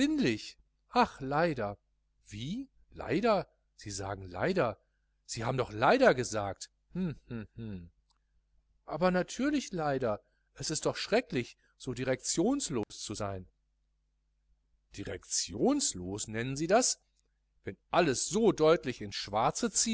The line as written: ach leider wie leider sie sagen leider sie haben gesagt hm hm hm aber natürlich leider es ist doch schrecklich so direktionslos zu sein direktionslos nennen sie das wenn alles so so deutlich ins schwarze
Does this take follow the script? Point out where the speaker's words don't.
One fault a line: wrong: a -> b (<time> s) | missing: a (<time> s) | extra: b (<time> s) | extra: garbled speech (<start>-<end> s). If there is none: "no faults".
extra: doch leider (5.6 s)
missing: so (18.5 s)